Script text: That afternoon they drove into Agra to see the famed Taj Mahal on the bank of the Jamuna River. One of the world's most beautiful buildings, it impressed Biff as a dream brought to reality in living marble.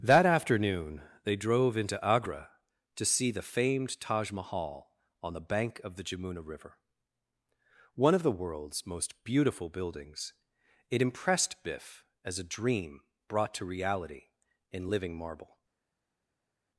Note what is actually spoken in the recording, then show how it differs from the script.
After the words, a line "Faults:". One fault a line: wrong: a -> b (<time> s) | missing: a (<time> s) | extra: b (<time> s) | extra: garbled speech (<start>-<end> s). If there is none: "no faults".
That afternoon they drove into Agra to see the famed Taj Mahal on the bank of the Jamuna River. One of the world's most beautiful buildings, it impressed Biff as a dream brought to reality in living marble.
Faults:
no faults